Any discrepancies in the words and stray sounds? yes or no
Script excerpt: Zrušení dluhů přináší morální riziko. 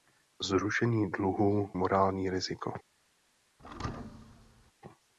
yes